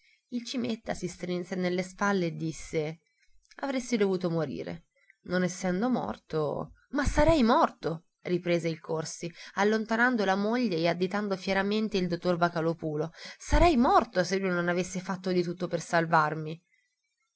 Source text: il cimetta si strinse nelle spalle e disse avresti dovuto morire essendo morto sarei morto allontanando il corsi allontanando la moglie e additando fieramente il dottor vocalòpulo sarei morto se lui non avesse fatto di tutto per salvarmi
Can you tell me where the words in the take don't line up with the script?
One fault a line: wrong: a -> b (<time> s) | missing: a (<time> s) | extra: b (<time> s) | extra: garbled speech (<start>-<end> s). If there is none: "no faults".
extra: non (5.2 s)
extra: ma (6.9 s)
wrong: allontanando -> riprese (8.2 s)